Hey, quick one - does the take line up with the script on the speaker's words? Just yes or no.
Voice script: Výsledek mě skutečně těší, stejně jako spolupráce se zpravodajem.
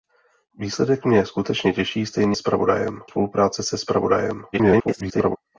no